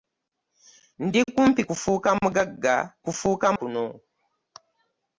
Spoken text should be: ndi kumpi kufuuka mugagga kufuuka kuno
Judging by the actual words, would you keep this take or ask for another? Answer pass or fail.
pass